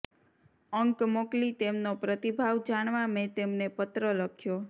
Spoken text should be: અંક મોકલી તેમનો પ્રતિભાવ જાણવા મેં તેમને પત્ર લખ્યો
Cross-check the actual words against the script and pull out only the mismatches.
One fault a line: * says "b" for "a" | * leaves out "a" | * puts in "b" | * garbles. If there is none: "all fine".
all fine